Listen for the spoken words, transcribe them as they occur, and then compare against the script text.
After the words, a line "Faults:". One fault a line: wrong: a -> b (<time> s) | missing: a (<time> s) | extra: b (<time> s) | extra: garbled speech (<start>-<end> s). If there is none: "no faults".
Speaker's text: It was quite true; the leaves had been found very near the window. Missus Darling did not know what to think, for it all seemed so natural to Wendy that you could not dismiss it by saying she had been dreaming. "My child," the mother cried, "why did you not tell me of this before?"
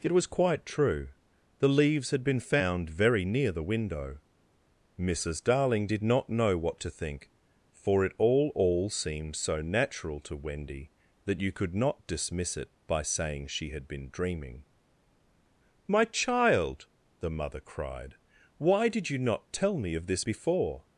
It was quite true; the leaves had been found very near the window. Missus Darling did not know what to think, for it all all seemed so natural to Wendy that you could not dismiss it by saying she had been dreaming. "My child," the mother cried, "why did you not tell me of this before?"
Faults:
extra: all (8.5 s)